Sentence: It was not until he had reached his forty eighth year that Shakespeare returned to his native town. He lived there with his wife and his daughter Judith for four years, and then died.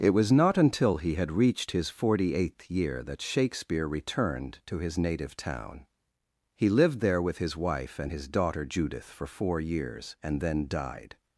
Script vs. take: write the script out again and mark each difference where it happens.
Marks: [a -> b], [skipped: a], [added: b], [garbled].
It was not until he had reached his forty eighth year that Shakespeare returned to his native town. He lived there with his wife and his daughter Judith for four years, and then died.